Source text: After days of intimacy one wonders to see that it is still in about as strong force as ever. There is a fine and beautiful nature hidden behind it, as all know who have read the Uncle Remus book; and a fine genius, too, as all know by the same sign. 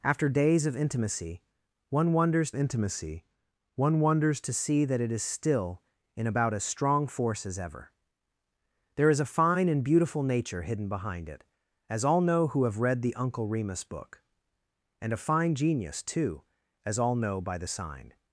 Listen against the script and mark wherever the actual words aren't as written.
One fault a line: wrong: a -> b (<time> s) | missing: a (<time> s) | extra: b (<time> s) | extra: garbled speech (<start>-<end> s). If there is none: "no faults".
extra: intimacy one wonders (2.5 s)
missing: same (17.7 s)